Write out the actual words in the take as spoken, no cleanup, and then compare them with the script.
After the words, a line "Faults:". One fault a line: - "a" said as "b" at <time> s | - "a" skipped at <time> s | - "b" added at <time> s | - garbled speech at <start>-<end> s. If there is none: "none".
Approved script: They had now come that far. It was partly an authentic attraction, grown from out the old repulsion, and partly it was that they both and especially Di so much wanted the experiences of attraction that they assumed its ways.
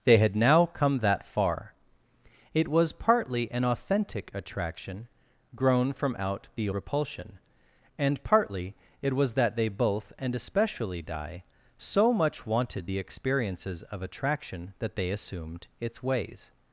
They had now come that far. It was partly an authentic attraction, grown from out the repulsion, and partly it was that they both and especially Di so much wanted the experiences of attraction that they assumed its ways.
Faults:
- "old" skipped at 6.7 s